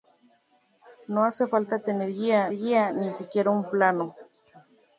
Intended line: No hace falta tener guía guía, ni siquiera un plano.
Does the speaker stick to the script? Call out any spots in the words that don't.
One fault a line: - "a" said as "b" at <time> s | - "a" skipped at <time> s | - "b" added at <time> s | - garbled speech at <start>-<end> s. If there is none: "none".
none